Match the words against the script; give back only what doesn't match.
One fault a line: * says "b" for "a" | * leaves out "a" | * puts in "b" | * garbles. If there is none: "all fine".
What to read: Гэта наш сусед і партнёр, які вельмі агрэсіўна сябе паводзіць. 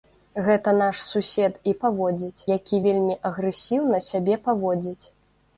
* says "паводзіць" for "партнёр"